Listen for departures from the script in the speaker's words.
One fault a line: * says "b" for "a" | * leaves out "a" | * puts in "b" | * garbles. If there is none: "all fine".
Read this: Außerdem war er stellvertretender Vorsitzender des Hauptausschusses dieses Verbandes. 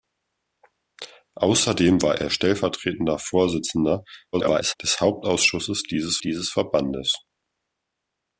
* garbles
* puts in "dieses"